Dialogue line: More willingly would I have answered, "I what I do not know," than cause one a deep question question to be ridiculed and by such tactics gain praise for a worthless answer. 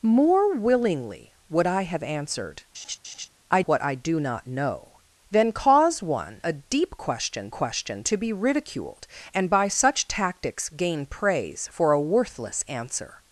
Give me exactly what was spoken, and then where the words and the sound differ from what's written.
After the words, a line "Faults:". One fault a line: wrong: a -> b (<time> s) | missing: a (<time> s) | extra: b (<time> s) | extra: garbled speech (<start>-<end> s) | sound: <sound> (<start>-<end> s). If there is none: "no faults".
More willingly would I have answered, "I what I do not know," than cause one a deep question question to be ridiculed and by such tactics gain praise for a worthless answer.
Faults:
sound: laugh (2.7-3.3 s)